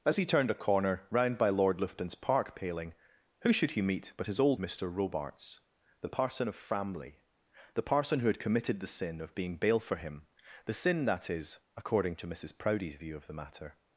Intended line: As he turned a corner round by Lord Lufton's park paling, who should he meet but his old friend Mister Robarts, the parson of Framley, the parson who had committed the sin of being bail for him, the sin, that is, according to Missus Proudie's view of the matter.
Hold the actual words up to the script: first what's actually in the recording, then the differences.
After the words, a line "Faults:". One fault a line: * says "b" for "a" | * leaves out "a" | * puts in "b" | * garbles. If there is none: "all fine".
As he turned a corner round by Lord Lufton's park paling, who should he meet but his old Mister Robarts, the parson of Framley, the parson who had committed the sin of being bail for him, the sin, that is, according to Missus Proudie's view of the matter.
Faults:
* leaves out "friend"